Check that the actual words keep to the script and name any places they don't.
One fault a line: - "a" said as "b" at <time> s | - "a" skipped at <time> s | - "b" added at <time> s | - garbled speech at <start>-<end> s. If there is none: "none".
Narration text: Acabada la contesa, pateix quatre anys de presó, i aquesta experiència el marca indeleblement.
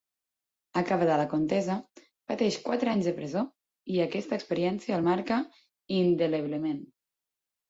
none